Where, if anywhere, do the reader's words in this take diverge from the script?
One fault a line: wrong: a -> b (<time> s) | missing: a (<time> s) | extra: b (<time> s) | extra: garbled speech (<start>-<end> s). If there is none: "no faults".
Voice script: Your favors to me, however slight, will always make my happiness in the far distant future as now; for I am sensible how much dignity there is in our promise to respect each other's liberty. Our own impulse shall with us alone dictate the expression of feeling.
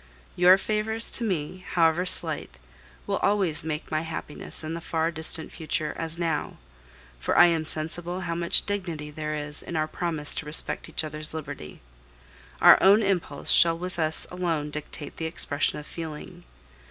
no faults